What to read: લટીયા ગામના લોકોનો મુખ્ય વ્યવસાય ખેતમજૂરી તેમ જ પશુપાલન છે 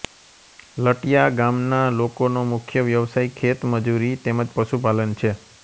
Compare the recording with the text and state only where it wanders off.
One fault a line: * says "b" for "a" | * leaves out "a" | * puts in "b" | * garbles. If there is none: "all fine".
all fine